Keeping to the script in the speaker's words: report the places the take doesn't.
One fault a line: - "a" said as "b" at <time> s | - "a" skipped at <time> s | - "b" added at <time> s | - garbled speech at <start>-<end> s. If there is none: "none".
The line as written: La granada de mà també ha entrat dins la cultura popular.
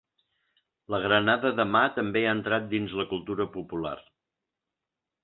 none